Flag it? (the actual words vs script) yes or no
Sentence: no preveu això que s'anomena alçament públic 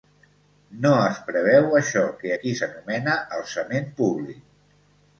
yes